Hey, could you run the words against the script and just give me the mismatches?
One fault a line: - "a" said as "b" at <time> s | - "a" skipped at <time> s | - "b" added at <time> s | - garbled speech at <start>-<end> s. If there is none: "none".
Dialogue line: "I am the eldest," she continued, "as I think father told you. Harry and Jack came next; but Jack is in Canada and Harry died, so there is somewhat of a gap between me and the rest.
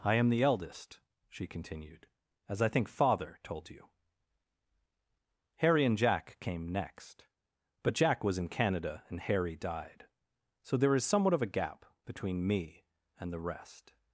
- "is" said as "was" at 8.2 s